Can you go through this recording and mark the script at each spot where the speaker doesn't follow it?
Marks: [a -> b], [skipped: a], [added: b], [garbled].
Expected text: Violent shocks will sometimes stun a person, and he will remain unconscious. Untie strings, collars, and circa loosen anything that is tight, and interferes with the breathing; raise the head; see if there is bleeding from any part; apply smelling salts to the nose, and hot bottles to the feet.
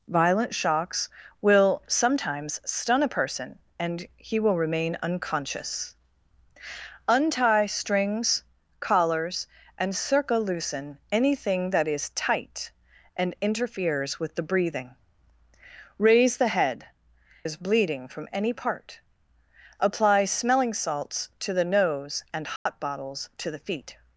Violent shocks will sometimes stun a person, and he will remain unconscious. Untie strings, collars, and circa loosen anything that is tight, and interferes with the breathing; raise the head; [skipped: see if there] is bleeding from any part; apply smelling salts to the nose, and hot bottles to the feet.